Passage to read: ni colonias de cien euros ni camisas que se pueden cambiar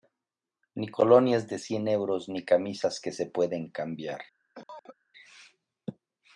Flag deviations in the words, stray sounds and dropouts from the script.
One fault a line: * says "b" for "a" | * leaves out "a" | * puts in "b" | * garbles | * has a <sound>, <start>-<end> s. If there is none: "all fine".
* has a cough, 4.5-5.0 s